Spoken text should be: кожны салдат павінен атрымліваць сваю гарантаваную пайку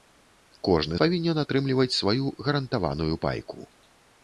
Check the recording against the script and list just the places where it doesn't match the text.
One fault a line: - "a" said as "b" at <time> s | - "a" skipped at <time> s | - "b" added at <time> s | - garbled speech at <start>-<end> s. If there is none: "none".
- "салдат" skipped at 1.0 s